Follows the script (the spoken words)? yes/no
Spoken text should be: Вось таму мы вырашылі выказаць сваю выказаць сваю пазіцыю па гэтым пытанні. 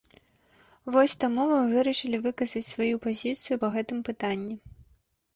no